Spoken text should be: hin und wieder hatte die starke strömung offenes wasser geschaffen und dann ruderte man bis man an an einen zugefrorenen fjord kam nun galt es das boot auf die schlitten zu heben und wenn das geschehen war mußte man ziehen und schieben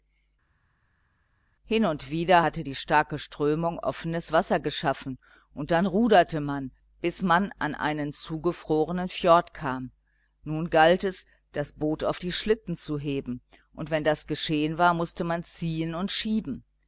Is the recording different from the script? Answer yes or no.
yes